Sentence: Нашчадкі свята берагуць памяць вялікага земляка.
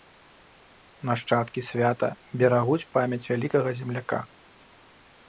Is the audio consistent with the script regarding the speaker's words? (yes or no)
yes